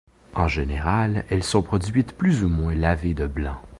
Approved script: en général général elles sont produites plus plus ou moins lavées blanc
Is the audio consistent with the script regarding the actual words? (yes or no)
no